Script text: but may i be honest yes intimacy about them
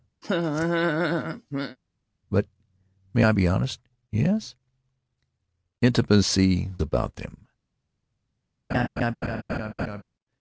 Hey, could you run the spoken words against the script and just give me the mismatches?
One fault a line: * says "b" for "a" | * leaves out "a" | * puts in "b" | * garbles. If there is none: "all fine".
all fine